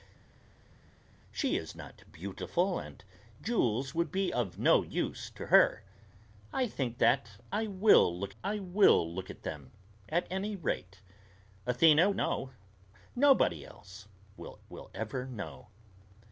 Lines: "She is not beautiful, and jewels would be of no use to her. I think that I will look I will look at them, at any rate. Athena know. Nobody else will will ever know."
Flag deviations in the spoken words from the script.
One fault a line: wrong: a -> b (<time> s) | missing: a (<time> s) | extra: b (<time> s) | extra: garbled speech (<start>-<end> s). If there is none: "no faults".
no faults